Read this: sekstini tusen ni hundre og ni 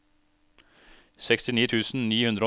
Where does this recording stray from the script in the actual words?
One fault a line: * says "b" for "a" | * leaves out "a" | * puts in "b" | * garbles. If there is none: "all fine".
all fine